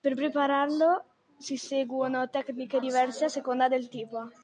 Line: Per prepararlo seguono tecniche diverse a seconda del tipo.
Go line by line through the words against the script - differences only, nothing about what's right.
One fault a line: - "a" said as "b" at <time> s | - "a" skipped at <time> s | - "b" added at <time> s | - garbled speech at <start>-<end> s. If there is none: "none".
- "si" added at 1.4 s